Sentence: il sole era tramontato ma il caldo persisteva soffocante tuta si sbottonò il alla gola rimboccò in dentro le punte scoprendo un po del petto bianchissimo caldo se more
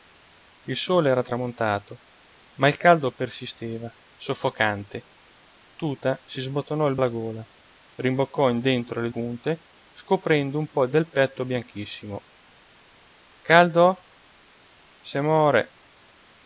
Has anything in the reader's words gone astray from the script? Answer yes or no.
no